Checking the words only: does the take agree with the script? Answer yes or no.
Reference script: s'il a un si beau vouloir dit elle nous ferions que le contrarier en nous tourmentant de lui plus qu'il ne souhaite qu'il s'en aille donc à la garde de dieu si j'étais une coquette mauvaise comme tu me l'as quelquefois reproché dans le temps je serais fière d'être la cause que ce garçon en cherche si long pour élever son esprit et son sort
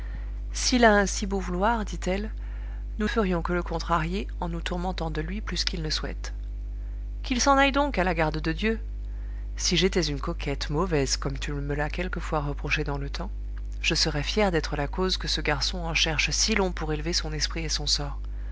yes